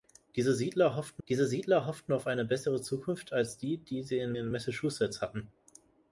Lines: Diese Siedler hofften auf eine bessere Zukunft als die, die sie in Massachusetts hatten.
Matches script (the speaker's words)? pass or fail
fail